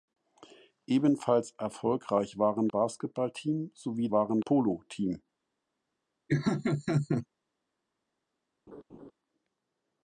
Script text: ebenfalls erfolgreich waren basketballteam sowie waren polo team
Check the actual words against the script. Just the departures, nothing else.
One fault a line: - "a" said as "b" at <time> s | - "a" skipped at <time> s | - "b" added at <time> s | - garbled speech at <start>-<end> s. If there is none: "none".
none